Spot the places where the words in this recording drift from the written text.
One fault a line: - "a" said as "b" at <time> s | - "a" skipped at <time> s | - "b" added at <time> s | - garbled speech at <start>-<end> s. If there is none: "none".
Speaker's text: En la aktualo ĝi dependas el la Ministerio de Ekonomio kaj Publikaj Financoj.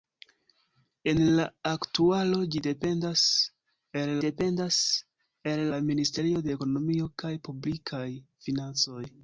- "dependas el" added at 4.3 s